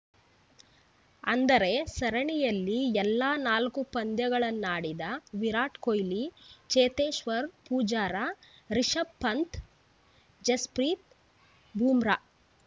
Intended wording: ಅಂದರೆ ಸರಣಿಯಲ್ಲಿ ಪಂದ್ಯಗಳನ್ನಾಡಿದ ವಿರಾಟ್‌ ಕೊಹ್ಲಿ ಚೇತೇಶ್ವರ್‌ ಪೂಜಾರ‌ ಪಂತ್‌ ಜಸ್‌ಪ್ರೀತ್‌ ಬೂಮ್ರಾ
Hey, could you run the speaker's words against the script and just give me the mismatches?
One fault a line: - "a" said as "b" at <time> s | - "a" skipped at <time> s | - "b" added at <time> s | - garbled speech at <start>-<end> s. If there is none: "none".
- "ಎಲ್ಲಾ ನಾಲ್ಕು" added at 3.0 s
- "ರಿಷಭ್" added at 8.7 s